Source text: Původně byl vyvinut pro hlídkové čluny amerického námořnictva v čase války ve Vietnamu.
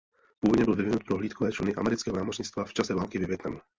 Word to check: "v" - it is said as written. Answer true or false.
true